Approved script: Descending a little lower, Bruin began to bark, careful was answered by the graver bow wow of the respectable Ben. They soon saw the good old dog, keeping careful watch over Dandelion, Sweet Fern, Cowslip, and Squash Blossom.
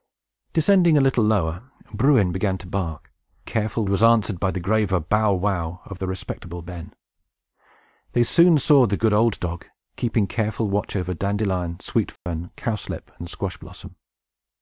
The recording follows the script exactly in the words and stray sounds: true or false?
false